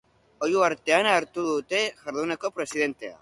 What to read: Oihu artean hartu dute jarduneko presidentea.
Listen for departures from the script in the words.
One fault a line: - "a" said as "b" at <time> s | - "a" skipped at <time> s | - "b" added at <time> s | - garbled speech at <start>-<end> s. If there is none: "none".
none